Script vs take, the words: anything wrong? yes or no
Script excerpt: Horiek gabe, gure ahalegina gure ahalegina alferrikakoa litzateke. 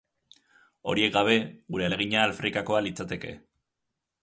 yes